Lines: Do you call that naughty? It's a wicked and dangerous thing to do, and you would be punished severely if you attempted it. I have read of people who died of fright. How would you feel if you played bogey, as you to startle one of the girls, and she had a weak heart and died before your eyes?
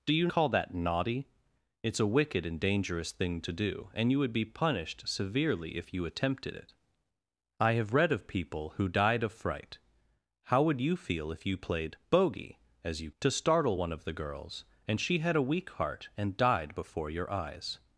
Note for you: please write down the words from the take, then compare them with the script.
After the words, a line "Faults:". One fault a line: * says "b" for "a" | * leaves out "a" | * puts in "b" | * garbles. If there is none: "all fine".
Do you call that naughty? It's a wicked and dangerous thing to do, and you would be punished severely if you attempted it. I have read of people who died of fright. How would you feel if you played bogey, as you to startle one of the girls, and she had a weak heart and died before your eyes?
Faults:
all fine